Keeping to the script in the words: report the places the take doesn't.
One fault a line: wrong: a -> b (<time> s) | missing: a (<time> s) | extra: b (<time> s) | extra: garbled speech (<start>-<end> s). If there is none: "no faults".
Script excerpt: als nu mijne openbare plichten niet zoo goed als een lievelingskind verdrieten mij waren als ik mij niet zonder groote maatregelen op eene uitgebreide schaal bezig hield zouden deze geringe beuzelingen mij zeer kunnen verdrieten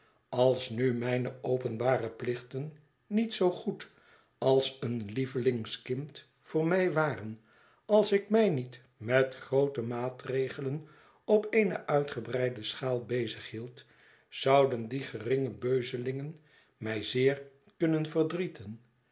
wrong: verdrieten -> voor (6.4 s)
wrong: zonder -> met (9.0 s)
wrong: deze -> die (14.9 s)